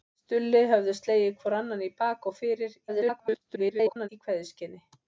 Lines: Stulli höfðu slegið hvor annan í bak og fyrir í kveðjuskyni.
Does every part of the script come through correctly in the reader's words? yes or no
no